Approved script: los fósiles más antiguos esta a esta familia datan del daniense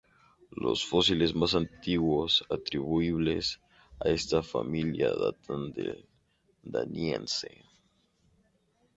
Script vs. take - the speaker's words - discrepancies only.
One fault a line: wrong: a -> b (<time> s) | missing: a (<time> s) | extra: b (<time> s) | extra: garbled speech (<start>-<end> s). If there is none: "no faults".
wrong: esta -> atribuibles (2.5 s)